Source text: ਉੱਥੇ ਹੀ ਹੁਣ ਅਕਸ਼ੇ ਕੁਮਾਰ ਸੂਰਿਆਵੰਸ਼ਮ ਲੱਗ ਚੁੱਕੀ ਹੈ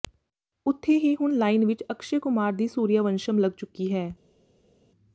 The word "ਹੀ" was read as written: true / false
true